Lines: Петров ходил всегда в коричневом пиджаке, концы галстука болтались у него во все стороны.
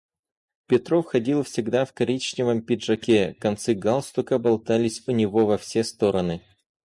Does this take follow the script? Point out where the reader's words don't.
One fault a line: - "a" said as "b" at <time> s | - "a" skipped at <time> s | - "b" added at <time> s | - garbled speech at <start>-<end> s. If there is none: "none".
none